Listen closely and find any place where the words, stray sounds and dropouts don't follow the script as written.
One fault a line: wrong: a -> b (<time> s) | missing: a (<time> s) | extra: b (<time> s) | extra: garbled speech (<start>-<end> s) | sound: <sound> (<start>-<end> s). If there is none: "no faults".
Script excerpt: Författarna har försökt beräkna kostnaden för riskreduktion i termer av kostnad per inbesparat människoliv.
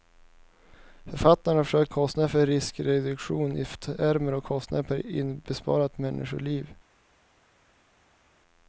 missing: beräkna (1.9 s)